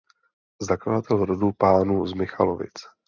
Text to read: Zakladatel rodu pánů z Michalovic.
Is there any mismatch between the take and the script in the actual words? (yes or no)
no